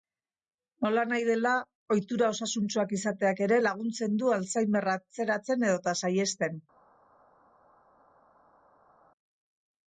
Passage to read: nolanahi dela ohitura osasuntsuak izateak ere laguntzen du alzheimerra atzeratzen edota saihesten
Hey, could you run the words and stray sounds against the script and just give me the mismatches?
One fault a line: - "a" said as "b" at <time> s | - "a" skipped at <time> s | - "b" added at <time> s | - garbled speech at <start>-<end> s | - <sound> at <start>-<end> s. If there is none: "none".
none